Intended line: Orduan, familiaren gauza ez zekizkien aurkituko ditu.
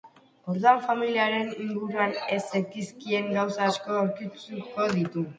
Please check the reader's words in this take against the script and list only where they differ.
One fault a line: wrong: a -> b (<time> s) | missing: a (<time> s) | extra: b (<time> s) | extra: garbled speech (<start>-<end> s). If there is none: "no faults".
wrong: gauza -> inguruan (1.6 s)
extra: gauza asko (3.4 s)